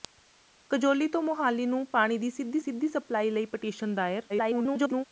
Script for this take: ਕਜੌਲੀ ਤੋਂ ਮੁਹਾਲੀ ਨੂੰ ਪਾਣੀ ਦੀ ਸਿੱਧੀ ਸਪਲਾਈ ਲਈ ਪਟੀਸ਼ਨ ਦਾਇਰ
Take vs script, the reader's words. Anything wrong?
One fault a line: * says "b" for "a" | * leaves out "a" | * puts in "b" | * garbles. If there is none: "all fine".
* puts in "ਸਿੱਧੀ"
* garbles